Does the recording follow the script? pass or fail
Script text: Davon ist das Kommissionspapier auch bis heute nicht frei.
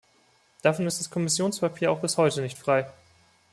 pass